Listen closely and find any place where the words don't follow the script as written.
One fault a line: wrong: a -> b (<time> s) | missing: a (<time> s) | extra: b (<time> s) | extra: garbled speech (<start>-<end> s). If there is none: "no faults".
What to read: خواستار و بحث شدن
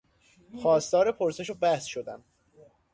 extra: پرسش (1.1 s)